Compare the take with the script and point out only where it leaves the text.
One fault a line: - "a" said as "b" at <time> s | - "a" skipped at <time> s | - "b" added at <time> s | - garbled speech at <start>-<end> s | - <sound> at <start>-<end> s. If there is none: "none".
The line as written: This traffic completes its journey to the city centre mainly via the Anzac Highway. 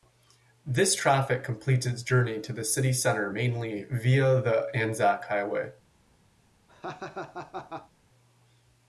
- laugh at 6.7-7.9 s